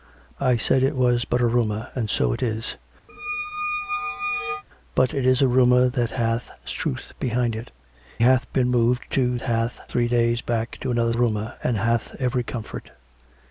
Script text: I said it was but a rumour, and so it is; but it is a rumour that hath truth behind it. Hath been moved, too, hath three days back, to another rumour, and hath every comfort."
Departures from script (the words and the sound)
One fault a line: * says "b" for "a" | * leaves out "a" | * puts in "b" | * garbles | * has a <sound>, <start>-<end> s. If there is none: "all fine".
* has a squeak, 3.1-4.6 s